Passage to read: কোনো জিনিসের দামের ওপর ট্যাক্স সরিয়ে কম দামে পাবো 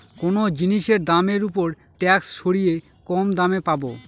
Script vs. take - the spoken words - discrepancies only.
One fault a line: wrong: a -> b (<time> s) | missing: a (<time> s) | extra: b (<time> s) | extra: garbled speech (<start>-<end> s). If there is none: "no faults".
no faults